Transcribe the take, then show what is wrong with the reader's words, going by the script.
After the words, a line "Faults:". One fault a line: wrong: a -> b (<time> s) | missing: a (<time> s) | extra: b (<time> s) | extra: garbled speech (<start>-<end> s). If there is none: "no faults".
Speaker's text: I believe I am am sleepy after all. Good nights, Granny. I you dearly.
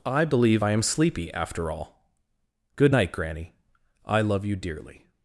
I believe I am sleepy after all. Good night, Granny. I love you dearly.
Faults:
missing: am (0.8 s)
wrong: nights -> night (2.9 s)
extra: love (4.2 s)